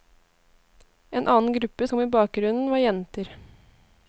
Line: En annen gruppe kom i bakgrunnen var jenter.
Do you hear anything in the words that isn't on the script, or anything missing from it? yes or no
no